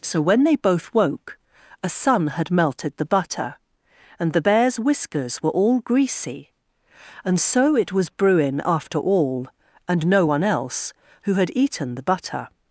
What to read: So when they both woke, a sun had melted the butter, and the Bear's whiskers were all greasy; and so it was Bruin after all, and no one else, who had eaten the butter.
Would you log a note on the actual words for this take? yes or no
no